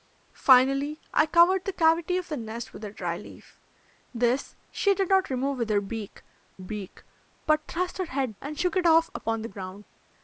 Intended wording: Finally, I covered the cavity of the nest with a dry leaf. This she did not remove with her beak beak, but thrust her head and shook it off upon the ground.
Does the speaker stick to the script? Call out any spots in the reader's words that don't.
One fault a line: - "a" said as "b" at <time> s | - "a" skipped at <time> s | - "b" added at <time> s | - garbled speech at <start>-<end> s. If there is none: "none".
none